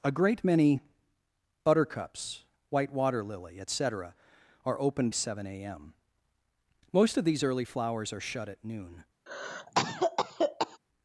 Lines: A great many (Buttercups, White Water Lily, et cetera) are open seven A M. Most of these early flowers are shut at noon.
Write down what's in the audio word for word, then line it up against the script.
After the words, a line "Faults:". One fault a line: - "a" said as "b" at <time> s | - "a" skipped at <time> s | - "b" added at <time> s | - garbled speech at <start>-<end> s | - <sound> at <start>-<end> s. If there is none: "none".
A great many (Buttercups, White Water Lily, et cetera) are open seven A M. Most of these early flowers are shut at noon.
Faults:
- cough at 9.3-10.8 s